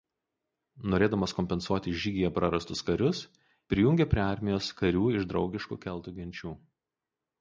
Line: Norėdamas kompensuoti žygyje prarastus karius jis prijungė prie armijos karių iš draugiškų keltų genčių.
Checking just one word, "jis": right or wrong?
wrong